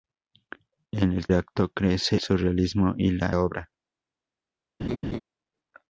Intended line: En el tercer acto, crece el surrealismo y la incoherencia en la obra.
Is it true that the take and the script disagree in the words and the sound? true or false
true